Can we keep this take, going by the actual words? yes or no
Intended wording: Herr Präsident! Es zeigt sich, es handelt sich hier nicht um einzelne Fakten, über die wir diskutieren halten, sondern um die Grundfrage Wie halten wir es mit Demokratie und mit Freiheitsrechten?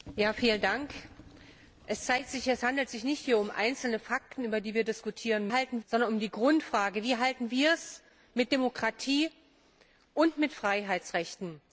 yes